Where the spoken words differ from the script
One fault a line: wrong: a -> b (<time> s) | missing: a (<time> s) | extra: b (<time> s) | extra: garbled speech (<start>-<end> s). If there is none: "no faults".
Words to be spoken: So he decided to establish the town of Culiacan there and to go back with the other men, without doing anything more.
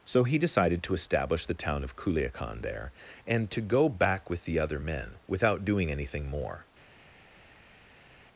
no faults